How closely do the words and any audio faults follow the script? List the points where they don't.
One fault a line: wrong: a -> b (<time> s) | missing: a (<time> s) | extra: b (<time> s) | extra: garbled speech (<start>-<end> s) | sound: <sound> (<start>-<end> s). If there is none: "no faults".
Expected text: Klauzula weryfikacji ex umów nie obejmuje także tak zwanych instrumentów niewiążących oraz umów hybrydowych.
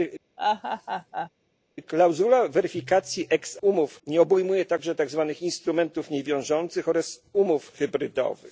sound: laugh (0.4-1.3 s)